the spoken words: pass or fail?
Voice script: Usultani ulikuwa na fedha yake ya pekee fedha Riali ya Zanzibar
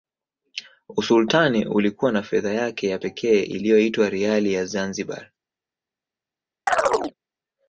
fail